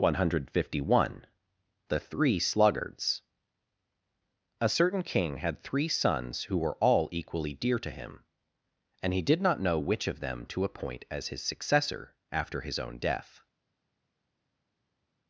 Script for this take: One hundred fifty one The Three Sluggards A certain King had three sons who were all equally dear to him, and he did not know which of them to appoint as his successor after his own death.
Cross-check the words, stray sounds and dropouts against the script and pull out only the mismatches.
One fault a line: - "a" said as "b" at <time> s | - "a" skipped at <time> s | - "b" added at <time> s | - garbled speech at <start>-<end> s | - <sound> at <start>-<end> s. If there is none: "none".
none